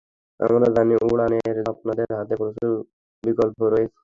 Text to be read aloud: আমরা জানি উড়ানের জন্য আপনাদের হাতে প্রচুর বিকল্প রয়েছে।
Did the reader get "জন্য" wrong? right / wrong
wrong